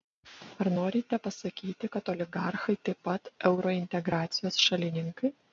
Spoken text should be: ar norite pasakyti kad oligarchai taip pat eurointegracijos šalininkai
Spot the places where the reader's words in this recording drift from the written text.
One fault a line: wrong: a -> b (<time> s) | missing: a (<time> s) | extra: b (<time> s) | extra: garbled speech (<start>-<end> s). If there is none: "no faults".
no faults